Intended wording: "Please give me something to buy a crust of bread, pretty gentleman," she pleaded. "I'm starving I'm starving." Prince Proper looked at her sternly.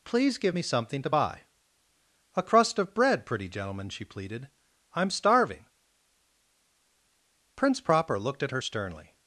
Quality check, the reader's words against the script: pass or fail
fail